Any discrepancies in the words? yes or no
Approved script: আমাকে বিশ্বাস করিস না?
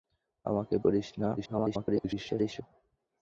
yes